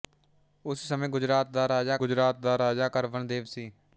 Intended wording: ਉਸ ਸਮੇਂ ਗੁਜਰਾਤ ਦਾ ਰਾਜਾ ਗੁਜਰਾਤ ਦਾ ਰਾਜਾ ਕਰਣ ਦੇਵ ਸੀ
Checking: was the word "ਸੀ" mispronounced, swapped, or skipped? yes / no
no